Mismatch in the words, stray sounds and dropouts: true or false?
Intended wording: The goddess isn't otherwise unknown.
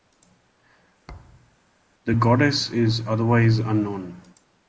true